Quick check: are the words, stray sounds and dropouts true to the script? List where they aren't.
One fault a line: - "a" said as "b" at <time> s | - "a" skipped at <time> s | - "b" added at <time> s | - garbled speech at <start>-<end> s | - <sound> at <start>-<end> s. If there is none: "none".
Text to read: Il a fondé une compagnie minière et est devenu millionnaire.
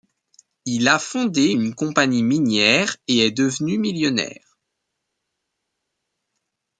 none